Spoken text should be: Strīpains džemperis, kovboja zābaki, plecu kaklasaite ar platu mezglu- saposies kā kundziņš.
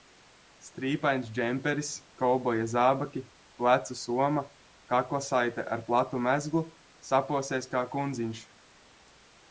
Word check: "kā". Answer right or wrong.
right